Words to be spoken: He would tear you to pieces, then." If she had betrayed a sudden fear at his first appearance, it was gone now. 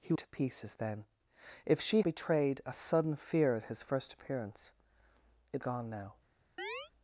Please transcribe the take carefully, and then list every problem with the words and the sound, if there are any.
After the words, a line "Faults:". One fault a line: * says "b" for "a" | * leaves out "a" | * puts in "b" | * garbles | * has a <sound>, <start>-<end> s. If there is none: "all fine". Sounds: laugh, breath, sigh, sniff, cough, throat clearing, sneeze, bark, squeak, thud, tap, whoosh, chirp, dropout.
He to pieces, then." If she betrayed a sudden fear at his first appearance, it gone now.
Faults:
* leaves out "would tear you"
* leaves out "had"
* leaves out "was"
* has a chirp, 6.6-6.9 s